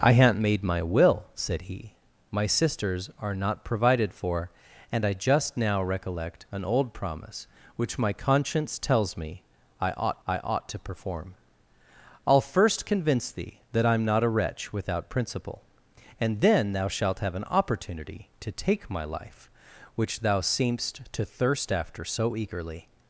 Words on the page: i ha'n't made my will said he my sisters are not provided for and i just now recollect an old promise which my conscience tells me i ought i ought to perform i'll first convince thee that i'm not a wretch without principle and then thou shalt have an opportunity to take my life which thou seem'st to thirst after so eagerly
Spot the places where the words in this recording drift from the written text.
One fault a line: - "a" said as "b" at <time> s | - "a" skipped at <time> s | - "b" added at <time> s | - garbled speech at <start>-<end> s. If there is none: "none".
none